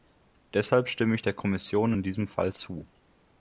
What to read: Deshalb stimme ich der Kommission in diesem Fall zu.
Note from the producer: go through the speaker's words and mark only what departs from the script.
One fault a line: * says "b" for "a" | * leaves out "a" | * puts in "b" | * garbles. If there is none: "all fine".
all fine